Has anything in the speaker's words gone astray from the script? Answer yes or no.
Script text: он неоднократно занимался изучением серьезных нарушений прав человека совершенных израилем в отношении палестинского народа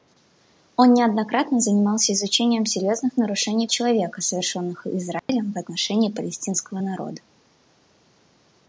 yes